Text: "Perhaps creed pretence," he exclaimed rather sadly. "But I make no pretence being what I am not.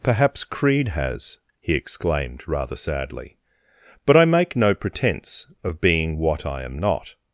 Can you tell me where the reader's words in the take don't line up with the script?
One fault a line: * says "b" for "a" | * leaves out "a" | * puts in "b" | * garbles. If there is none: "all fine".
* says "has" for "pretence"
* puts in "of"